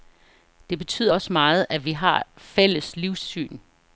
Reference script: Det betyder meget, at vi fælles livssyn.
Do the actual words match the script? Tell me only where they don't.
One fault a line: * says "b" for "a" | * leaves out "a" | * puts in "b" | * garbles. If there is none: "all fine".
* puts in "også"
* puts in "har"